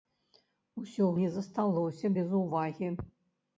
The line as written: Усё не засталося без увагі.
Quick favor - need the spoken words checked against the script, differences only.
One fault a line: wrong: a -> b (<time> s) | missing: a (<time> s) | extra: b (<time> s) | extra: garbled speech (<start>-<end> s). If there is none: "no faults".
no faults